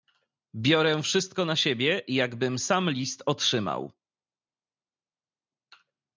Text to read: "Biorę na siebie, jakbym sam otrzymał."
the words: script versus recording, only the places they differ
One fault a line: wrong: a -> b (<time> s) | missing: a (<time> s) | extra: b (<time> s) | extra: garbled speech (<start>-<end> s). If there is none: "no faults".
extra: wszystko (1.0 s)
extra: list (2.9 s)